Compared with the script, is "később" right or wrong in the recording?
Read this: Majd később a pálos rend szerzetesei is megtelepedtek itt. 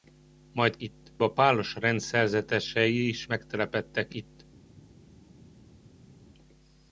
wrong